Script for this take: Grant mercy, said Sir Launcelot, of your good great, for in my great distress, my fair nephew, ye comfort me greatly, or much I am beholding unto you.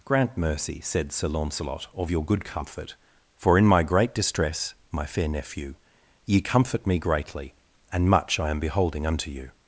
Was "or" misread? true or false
true